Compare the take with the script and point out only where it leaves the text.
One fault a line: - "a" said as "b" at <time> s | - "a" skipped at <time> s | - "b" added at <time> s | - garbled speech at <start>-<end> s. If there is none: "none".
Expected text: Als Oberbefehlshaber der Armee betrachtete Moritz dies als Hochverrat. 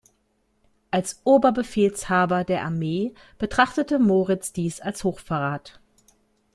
none